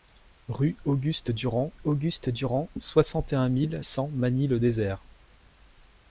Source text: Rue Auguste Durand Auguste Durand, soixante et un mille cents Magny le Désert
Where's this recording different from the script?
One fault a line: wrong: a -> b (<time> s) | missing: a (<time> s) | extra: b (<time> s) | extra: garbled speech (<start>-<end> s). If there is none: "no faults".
no faults